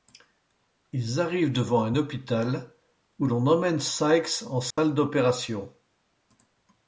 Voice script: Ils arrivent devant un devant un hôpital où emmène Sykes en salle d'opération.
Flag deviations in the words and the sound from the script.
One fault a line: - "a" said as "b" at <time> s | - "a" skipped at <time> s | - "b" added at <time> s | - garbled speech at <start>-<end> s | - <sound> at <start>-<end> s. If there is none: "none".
- "devant un" skipped at 1.9 s
- "l'on" added at 3.2 s
- dropout at 4.7-4.8 s